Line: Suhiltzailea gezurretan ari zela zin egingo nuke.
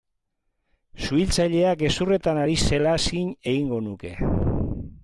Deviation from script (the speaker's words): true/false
false